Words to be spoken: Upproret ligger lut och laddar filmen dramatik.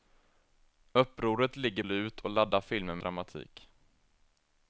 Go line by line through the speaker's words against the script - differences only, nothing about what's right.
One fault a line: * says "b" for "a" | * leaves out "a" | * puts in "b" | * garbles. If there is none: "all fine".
all fine